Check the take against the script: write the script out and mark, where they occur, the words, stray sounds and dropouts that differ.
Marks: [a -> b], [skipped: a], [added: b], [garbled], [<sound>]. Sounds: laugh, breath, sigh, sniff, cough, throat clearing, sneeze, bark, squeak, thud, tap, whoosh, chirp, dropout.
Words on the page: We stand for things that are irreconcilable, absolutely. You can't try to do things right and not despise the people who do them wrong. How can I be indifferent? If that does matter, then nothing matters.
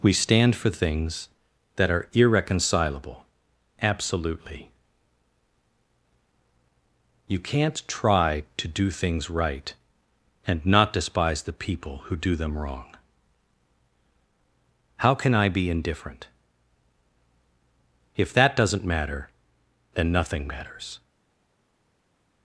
We stand for things that are irreconcilable, absolutely. You can't try to do things right and not despise the people who do them wrong. How can I be indifferent? If that [does -> doesn't] matter, then nothing matters.